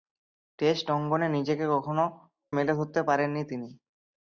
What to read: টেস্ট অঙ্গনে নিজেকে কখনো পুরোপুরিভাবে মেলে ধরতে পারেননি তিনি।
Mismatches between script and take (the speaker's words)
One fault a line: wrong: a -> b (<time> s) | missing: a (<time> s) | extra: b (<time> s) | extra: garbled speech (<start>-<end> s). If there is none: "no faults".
missing: পুরোপুরিভাবে (2.0 s)